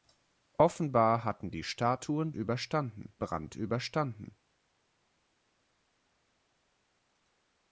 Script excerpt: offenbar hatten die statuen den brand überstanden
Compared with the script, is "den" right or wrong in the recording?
wrong